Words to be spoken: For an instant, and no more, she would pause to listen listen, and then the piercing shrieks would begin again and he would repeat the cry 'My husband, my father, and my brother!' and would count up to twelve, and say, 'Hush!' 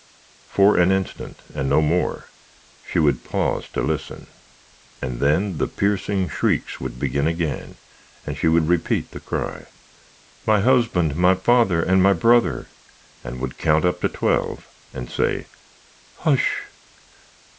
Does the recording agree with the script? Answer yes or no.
no